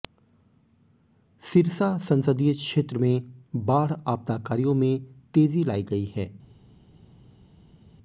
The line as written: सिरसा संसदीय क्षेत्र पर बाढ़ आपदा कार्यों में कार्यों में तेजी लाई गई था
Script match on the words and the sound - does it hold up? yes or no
no